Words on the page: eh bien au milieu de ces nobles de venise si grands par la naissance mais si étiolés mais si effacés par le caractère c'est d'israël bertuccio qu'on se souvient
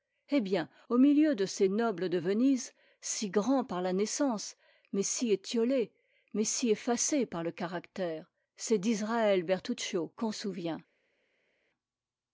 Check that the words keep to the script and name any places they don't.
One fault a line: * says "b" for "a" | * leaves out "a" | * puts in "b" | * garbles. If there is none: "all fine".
* leaves out "se"